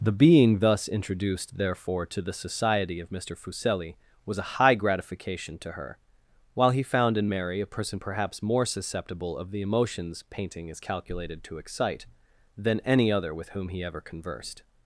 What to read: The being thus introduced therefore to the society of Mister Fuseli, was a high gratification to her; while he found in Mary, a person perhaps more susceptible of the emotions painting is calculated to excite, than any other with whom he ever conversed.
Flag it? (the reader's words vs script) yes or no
no